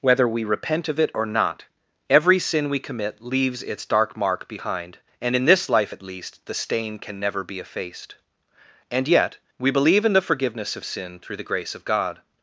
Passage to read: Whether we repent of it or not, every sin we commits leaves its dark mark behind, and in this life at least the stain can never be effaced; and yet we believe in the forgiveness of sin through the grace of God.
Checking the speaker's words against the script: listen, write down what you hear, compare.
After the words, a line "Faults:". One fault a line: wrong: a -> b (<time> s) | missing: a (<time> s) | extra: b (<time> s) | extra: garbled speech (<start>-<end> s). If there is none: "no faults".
Whether we repent of it or not, every sin we commit leaves its dark mark behind, and in this life at least the stain can never be effaced; and yet we believe in the forgiveness of sin through the grace of God.
Faults:
wrong: commits -> commit (2.8 s)